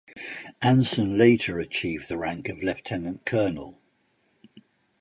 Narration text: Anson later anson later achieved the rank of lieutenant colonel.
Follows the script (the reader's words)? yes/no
no